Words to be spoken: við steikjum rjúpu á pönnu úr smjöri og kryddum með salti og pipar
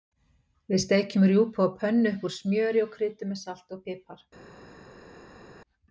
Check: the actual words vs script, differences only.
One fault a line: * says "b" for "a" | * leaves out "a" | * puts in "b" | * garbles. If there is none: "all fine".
* puts in "upp"